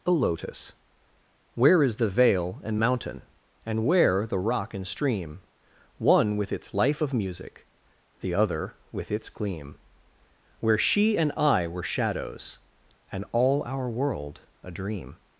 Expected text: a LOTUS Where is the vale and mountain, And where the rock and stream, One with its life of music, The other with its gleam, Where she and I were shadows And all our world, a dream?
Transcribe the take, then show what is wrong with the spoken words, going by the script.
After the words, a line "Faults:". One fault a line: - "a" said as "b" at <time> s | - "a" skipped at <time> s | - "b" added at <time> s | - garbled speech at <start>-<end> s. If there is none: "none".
a LOTUS Where is the vale and mountain, And where the rock and stream, One with its life of music, The other with its gleam, Where she and I were shadows And all our world, a dream?
Faults:
none